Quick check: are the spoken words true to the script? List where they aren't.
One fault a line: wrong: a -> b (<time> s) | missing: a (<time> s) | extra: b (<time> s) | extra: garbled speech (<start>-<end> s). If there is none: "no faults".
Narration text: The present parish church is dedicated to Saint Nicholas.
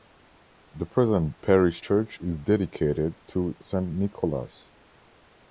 no faults